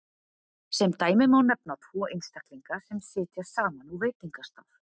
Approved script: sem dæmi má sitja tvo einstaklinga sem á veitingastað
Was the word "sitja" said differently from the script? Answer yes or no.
yes